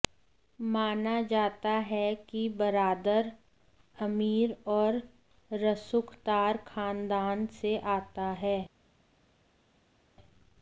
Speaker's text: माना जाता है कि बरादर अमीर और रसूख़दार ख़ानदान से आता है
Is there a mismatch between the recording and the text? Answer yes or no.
no